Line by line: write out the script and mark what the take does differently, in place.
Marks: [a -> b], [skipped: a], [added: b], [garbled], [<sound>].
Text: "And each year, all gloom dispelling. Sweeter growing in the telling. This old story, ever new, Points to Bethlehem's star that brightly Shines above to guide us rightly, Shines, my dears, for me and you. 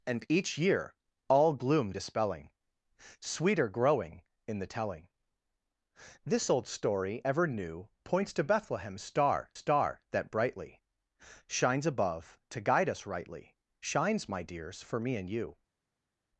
"And each year, all gloom dispelling. Sweeter growing in the telling. This old story, ever new, Points to Bethlehem's star [added: star] that brightly Shines above to guide us rightly, Shines, my dears, for me and you.